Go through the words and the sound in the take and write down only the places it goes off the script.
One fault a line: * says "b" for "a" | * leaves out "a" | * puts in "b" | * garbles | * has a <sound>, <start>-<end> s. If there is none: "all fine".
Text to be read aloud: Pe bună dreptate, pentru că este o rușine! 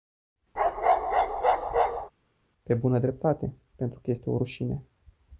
* has a bark, 0.6-2.1 s